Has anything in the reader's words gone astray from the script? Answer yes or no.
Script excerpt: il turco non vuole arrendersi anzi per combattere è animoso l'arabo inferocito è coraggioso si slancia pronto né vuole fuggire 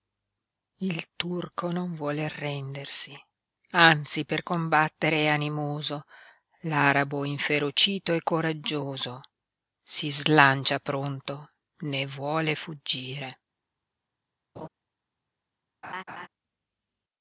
no